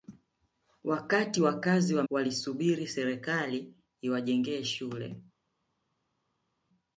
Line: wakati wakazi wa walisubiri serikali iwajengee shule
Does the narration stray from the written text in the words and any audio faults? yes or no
no